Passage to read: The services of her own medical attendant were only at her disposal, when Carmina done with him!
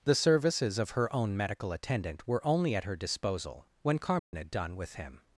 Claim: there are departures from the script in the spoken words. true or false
false